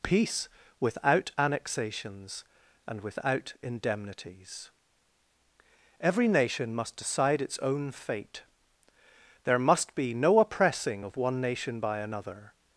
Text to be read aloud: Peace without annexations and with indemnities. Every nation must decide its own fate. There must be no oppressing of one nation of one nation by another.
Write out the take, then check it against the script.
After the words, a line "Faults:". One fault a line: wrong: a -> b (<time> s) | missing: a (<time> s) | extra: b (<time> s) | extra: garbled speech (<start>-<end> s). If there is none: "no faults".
Peace without annexations and without indemnities. Every nation must decide its own fate. There must be no oppressing of one nation by another.
Faults:
wrong: with -> without (3.0 s)
missing: of one nation (11.8 s)